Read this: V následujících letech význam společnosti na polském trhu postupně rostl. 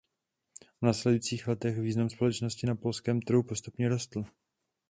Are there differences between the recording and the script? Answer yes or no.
no